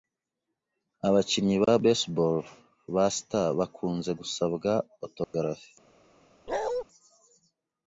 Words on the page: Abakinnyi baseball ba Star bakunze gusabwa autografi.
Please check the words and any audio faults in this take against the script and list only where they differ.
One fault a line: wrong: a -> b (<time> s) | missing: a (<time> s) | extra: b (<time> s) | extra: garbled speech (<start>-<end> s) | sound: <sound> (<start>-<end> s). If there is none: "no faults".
extra: ba (1.6 s)
sound: dropout (5.2-5.3 s)
sound: bark (6.5-6.8 s)